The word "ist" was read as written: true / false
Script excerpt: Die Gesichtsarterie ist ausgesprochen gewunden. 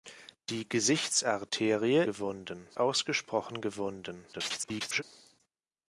false